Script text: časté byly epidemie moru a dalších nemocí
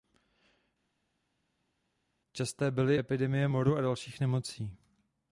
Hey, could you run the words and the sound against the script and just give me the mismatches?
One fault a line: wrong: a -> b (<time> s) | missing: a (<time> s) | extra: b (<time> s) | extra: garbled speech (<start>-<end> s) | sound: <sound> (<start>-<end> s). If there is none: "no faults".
no faults